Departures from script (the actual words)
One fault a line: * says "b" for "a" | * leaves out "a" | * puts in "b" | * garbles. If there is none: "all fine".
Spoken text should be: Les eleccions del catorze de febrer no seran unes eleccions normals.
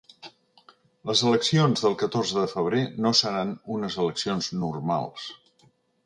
all fine